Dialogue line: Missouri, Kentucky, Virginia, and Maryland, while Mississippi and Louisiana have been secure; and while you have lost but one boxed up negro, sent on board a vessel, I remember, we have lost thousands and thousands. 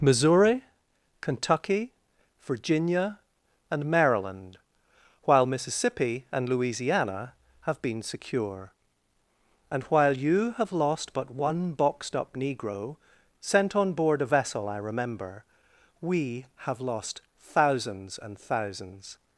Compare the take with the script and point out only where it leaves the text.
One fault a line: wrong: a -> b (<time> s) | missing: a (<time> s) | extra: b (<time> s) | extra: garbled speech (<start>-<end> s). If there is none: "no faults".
no faults